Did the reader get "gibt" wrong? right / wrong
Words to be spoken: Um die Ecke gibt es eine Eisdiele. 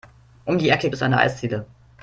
wrong